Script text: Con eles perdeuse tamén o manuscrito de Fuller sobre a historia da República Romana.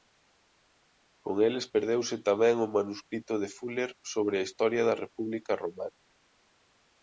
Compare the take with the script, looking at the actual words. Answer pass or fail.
pass